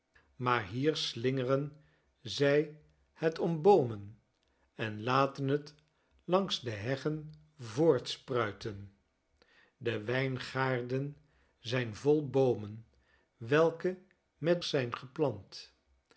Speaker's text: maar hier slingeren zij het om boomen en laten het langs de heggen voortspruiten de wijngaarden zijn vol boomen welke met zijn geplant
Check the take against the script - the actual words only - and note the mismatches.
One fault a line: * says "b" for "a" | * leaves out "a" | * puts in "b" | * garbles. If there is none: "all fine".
all fine